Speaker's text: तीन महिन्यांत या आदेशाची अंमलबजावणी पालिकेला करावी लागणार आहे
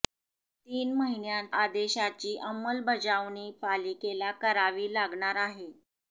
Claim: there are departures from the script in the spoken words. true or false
true